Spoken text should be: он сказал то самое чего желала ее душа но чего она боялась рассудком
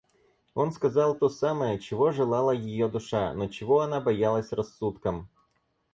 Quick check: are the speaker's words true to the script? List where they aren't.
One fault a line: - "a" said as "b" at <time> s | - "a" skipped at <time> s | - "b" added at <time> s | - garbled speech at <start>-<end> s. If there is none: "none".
none